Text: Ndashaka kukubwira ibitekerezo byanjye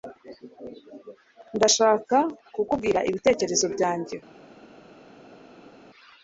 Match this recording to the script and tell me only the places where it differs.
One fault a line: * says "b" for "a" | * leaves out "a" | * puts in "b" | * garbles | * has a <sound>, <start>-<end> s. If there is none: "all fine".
all fine